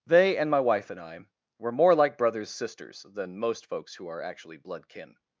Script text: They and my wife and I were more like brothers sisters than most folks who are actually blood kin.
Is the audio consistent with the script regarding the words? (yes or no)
yes